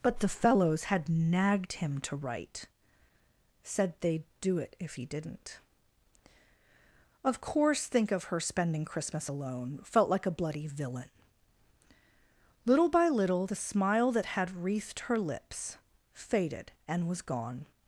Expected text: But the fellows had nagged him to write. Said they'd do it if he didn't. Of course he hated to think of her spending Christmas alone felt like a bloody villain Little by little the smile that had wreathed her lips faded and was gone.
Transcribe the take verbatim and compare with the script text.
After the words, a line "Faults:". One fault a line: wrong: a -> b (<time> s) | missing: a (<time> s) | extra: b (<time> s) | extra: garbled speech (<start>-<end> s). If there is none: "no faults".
But the fellows had nagged him to write. Said they'd do it if he didn't. Of course think of her spending Christmas alone felt like a bloody villain Little by little the smile that had wreathed her lips faded and was gone.
Faults:
missing: he hated to (7.9 s)